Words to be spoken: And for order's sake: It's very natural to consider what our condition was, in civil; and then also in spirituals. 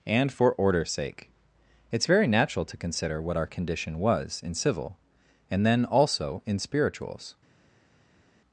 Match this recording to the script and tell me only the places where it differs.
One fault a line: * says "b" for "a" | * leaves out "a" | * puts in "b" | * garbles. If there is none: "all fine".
all fine